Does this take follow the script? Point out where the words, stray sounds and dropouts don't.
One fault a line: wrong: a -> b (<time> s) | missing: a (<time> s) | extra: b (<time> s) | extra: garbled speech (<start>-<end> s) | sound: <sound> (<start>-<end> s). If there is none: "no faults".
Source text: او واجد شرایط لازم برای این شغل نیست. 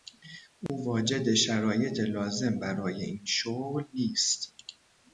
sound: dropout (0.7-0.7 s)